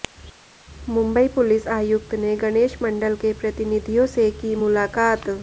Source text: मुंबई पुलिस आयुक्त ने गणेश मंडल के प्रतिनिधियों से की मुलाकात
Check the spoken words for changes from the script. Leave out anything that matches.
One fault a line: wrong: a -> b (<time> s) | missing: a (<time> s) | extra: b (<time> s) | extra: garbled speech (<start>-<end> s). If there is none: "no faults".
no faults